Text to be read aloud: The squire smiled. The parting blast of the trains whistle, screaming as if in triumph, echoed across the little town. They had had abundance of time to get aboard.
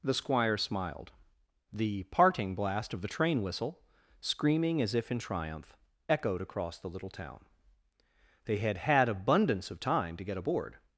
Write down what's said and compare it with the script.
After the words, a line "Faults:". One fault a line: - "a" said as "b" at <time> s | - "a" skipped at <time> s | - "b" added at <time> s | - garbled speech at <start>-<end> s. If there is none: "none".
The squire smiled. The parting blast of the train whistle, screaming as if in triumph, echoed across the little town. They had had abundance of time to get aboard.
Faults:
- "trains" said as "train" at 3.1 s